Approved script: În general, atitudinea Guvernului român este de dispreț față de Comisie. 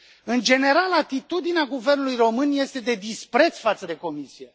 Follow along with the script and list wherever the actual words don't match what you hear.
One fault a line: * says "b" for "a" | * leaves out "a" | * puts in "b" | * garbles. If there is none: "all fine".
all fine